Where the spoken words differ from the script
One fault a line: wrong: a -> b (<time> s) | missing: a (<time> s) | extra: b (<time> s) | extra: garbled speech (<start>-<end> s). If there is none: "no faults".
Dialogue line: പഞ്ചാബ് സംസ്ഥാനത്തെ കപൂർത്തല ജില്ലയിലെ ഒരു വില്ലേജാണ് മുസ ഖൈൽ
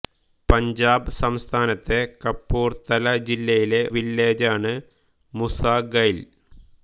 missing: ഒരു (3.8 s)